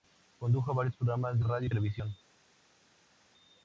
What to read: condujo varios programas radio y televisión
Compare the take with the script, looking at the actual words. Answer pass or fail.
pass